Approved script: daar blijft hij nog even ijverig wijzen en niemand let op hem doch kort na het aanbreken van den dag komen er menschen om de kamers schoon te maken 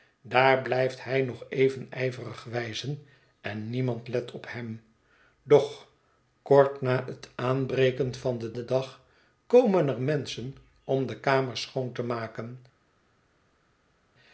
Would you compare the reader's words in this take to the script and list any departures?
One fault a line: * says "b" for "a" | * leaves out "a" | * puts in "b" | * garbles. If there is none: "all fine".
* puts in "den"